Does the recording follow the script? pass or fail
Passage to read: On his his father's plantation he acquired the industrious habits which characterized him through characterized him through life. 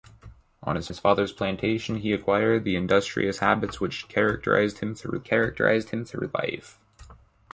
pass